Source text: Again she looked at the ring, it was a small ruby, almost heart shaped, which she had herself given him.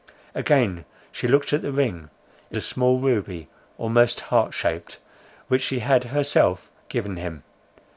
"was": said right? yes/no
no